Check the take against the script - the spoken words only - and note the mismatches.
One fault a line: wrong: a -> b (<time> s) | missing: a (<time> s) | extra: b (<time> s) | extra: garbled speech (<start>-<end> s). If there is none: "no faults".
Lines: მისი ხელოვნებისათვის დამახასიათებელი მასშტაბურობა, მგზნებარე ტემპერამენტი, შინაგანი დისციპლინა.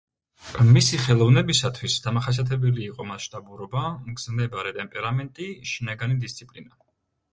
extra: იყო (2.9 s)